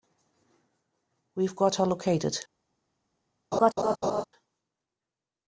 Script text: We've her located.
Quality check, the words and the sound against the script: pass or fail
fail